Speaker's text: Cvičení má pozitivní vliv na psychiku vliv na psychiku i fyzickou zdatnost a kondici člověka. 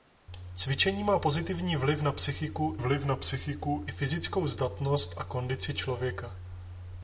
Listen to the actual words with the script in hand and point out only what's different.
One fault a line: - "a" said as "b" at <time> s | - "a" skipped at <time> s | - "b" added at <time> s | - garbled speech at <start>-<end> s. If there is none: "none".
none